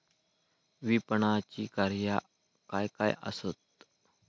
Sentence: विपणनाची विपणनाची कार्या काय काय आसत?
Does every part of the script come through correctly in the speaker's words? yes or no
no